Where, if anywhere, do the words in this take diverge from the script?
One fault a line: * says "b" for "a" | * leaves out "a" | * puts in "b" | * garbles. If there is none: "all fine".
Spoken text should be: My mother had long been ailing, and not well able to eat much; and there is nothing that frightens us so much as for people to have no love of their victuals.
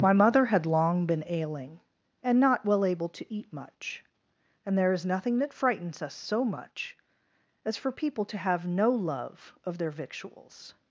all fine